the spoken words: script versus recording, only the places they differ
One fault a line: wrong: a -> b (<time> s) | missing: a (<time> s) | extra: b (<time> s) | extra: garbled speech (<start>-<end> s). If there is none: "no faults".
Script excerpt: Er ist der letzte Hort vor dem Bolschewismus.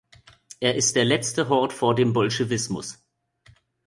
no faults